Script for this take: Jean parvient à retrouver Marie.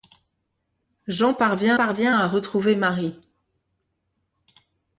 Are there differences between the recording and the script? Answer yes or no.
yes